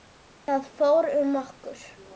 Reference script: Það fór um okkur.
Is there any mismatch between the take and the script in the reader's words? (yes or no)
no